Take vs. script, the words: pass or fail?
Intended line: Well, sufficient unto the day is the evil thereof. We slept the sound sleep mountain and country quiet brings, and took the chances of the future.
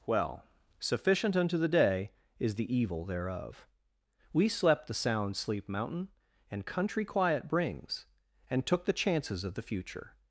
pass